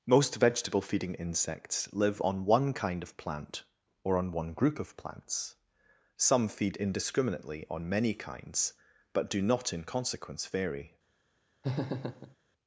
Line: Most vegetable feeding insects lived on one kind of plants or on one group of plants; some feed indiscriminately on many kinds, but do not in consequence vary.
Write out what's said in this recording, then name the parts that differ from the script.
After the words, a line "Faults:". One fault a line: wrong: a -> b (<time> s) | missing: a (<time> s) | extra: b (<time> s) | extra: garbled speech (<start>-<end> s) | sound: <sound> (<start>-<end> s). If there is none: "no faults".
Most vegetable feeding insects live on one kind of plant or on one group of plants; some feed indiscriminately on many kinds, but do not in consequence vary.
Faults:
wrong: lived -> live (1.9 s)
wrong: plants -> plant (3.2 s)
sound: laugh (11.6-12.4 s)